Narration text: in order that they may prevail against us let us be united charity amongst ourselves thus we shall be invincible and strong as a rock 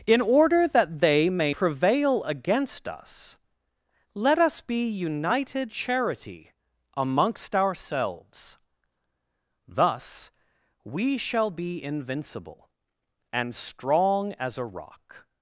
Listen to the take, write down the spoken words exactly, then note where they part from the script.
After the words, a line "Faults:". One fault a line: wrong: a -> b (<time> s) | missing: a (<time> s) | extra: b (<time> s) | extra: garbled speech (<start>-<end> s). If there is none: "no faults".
in order that they may prevail against us let us be united charity amongst ourselves thus we shall be invincible and strong as a rock
Faults:
no faults